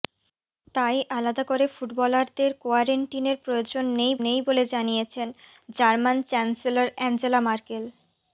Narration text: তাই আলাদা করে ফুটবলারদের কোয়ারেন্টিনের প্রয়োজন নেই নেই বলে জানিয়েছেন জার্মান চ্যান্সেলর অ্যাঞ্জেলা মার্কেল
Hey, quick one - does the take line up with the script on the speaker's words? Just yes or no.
yes